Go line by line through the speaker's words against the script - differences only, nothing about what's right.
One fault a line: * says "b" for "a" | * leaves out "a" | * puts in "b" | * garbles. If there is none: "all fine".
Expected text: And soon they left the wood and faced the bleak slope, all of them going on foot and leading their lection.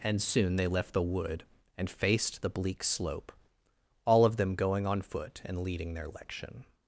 all fine